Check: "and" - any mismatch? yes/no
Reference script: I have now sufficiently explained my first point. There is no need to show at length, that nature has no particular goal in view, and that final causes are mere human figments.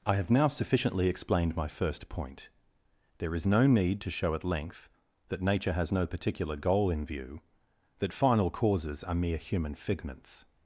yes